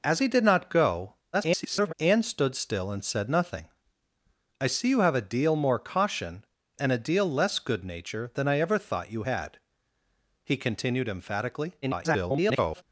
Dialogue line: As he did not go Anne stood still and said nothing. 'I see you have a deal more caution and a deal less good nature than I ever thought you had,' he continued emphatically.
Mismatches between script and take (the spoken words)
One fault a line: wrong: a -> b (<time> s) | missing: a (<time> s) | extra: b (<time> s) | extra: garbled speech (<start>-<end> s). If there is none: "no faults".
extra: garbled speech (1.3-1.9 s)
extra: garbled speech (11.8-12.8 s)